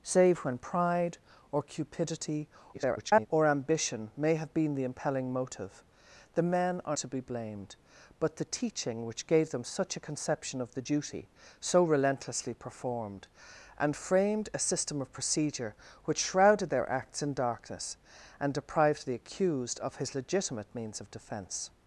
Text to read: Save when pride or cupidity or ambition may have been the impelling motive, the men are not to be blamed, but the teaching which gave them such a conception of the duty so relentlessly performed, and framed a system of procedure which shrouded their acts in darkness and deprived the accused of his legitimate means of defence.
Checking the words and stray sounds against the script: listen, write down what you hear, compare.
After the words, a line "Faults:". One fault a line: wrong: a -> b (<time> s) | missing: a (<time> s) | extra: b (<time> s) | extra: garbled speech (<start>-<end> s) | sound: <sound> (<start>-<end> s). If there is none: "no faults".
Save when pride or cupidity [garbled] or ambition may have been the impelling motive, the men are to be blamed, but the teaching which gave them such a conception of the duty so relentlessly performed, and framed a system of procedure which shrouded their acts in darkness and deprived the accused of his legitimate means of defence.
Faults:
extra: garbled speech (2.7-3.3 s)
missing: not (7.0 s)